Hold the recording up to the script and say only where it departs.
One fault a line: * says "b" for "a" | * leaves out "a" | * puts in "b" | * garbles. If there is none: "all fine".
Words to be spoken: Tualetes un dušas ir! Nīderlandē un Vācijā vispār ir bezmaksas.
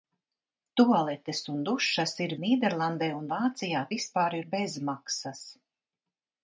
all fine